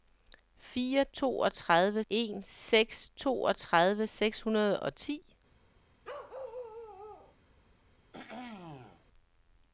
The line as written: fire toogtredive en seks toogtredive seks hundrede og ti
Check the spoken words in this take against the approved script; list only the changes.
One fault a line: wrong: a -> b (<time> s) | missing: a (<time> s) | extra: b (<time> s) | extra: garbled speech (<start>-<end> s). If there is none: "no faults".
no faults